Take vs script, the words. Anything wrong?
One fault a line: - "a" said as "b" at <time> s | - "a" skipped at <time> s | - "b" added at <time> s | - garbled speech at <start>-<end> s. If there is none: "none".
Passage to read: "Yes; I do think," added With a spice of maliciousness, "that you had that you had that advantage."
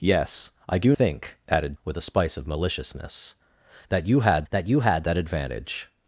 none